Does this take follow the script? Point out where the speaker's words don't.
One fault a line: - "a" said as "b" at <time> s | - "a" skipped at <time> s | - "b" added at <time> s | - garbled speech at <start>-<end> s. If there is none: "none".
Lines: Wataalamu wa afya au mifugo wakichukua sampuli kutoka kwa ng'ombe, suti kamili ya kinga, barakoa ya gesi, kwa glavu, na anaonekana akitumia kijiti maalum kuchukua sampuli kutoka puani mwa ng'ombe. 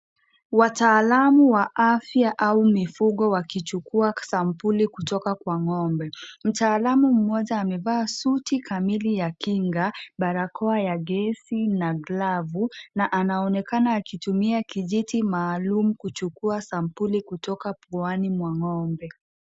- "mtaalamu mmoja amevaa" added at 6.4 s
- "kwa" said as "na" at 11.7 s